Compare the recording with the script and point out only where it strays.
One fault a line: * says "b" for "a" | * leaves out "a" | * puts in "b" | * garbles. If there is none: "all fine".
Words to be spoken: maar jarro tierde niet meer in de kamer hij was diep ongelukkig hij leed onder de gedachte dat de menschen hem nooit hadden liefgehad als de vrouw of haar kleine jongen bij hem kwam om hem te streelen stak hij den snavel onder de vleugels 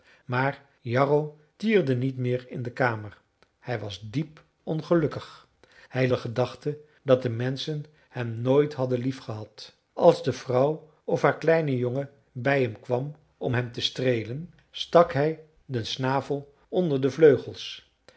* leaves out "leed onder"